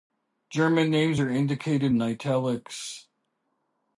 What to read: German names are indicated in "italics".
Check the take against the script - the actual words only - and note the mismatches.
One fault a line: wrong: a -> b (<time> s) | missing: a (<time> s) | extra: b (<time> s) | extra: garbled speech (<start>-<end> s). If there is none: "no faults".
no faults